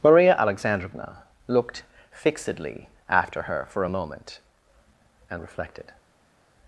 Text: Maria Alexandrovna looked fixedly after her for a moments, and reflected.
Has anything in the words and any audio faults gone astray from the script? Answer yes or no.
yes